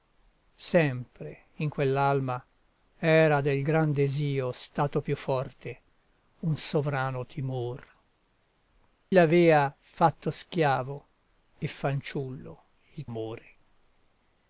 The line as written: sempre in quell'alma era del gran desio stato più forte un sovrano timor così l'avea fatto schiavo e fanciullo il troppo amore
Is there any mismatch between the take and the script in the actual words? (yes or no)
yes